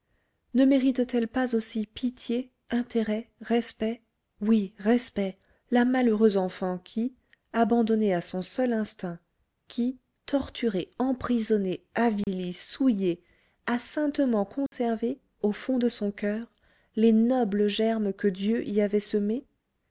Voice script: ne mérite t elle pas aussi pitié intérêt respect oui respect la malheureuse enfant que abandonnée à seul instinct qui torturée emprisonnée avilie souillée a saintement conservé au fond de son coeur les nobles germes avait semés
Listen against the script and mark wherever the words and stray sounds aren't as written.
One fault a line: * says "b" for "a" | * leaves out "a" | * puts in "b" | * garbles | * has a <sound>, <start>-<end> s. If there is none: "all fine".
* says "qui" for "que"
* puts in "son"
* has a dropout, 12.2-12.3 s
* has a dropout, 14.7-14.7 s
* puts in "que dieu y"